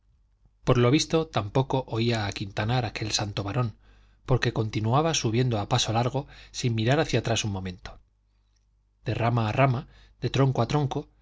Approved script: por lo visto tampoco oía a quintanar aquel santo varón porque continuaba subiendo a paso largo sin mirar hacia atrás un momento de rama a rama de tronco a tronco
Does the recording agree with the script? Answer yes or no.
yes